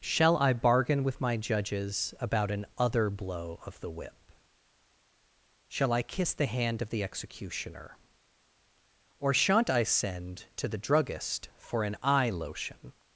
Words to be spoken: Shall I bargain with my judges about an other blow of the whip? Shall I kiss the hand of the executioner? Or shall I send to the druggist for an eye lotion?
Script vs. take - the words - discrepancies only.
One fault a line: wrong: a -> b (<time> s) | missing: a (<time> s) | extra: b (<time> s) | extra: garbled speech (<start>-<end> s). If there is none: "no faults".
wrong: shall -> shan't (9.3 s)